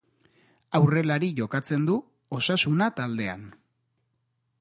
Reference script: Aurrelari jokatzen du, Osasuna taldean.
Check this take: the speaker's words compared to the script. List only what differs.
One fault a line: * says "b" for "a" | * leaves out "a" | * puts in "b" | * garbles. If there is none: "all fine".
all fine